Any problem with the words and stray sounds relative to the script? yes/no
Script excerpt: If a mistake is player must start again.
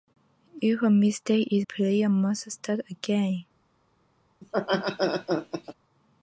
yes